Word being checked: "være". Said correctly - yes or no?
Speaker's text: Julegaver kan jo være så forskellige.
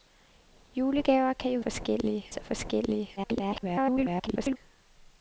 no